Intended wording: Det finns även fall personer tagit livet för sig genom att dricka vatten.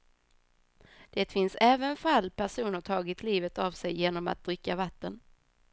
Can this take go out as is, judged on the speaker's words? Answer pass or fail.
fail